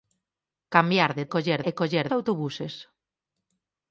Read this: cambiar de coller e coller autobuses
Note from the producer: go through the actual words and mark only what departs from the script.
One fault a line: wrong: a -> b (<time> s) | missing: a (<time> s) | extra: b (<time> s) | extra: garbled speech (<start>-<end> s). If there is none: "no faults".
no faults